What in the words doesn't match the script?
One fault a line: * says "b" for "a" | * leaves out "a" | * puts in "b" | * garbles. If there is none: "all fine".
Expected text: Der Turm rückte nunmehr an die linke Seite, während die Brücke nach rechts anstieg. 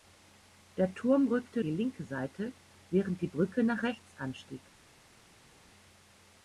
* leaves out "nunmehr an"